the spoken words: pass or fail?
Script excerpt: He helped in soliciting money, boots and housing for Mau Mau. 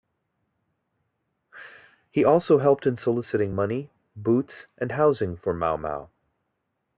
fail